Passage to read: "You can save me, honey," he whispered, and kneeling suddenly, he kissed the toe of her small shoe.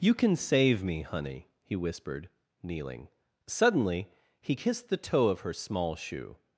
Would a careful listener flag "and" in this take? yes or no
yes